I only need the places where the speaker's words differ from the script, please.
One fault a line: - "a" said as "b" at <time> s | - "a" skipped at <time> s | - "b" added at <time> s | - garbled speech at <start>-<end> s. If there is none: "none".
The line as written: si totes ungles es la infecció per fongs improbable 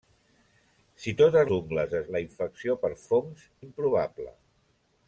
none